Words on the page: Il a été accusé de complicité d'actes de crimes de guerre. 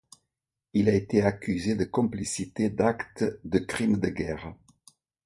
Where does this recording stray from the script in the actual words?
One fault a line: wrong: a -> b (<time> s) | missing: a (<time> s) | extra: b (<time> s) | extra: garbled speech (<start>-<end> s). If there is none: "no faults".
no faults